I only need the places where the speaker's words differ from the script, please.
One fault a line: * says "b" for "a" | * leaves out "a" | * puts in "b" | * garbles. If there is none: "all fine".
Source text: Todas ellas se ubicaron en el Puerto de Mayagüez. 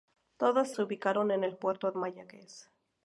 * leaves out "ellas"
* leaves out "de"